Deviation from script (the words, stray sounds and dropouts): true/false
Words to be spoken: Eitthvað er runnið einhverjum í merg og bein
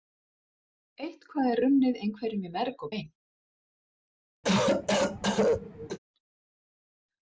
true